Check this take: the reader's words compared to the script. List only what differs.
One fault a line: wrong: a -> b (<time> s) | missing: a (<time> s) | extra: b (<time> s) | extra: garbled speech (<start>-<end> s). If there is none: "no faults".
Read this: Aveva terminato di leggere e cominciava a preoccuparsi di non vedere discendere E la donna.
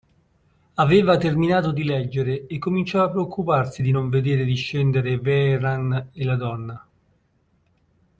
extra: Vehrehan (5.2 s)